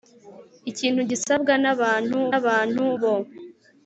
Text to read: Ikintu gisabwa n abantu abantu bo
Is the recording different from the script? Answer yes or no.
no